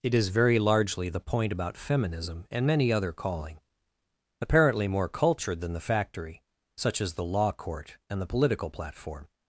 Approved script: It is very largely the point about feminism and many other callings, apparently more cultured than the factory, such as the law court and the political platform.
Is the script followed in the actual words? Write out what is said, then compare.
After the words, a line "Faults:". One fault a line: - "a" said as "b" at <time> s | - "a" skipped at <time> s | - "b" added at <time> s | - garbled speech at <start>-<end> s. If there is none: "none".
It is very largely the point about feminism and many other calling, apparently more cultured than the factory, such as the law court and the political platform.
Faults:
- "callings" said as "calling" at 3.1 s